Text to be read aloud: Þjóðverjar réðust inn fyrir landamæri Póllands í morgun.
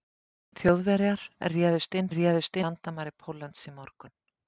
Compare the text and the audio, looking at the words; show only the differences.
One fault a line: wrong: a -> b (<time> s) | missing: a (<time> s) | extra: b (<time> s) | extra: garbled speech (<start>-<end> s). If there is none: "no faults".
wrong: fyrir -> réðust (2.2 s)